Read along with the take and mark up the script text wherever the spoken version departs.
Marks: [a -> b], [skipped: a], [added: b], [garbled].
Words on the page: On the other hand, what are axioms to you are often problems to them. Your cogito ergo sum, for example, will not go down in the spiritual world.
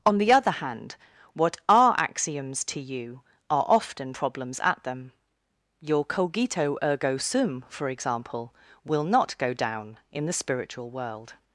On the other hand, what are axioms to you are often problems [to -> at] them. Your cogito ergo sum, for example, will not go down in the spiritual world.